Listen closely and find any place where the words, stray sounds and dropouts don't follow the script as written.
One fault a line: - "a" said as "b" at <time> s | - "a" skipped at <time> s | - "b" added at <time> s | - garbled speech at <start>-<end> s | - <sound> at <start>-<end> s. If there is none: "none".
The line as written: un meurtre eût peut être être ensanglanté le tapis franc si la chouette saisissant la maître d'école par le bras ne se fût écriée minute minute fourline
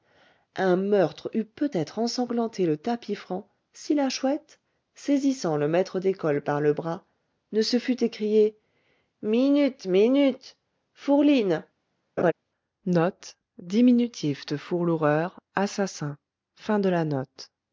- "être" skipped at 2.0 s
- "la" said as "le" at 5.6 s
- laugh at 12.2-12.3 s